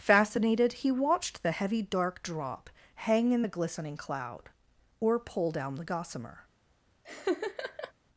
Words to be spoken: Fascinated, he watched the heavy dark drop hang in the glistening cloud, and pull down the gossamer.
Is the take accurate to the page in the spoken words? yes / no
no